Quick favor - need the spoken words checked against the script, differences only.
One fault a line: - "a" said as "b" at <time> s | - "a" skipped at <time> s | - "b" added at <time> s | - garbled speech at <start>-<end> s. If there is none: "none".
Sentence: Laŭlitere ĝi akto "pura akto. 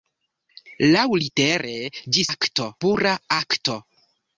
none